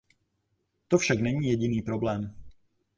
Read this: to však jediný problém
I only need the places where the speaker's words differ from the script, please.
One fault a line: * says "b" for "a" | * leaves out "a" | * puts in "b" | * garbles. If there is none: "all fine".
* puts in "není"